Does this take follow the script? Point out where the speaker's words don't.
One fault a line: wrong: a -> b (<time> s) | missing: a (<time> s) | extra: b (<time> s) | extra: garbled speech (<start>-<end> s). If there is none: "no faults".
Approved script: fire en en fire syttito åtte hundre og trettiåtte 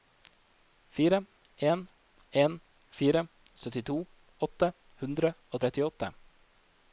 no faults